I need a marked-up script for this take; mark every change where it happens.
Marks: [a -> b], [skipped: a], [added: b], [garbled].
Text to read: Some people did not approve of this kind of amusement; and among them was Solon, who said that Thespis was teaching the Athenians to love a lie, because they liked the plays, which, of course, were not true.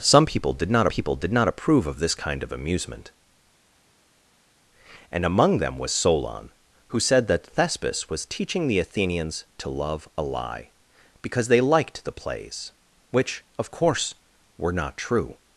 Some people did not [added: people did not] approve of this kind of amusement; and among them was Solon, who said that Thespis was teaching the Athenians to love a lie, because they liked the plays, which, of course, were not true.